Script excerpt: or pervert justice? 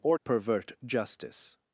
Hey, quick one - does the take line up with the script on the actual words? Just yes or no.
yes